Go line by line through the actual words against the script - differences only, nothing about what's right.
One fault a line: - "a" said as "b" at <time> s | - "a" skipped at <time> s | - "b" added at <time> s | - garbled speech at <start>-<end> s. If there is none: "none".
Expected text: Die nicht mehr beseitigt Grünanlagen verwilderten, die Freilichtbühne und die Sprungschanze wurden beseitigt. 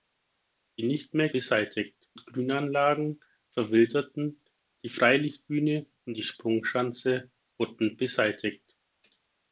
none